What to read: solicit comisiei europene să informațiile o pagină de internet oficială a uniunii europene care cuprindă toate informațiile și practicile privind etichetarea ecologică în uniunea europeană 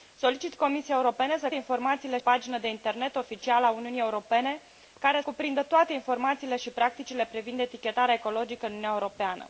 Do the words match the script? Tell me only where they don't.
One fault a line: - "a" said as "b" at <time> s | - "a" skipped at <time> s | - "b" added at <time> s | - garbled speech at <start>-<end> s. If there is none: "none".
none